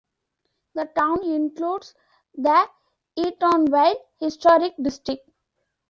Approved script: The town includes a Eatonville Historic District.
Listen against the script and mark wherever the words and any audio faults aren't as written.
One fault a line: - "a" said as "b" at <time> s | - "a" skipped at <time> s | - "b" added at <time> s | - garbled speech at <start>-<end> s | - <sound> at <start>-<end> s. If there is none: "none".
- "a" said as "the" at 2.4 s